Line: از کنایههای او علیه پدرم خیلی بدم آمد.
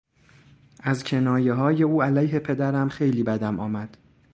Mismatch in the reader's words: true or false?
false